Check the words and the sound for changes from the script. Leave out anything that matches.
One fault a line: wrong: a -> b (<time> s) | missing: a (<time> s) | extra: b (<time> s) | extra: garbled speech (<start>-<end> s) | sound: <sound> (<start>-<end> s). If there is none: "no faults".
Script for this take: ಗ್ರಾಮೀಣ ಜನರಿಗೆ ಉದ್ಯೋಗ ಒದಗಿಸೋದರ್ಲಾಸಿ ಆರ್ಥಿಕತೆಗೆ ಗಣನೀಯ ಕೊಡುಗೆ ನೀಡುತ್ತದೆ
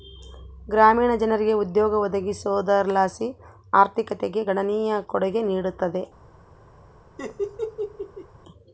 sound: laugh (7.2-8.3 s)